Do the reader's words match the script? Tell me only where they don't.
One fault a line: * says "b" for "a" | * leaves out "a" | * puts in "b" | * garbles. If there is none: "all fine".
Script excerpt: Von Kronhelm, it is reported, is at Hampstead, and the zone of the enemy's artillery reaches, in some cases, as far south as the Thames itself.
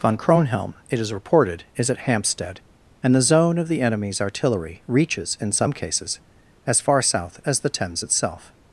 all fine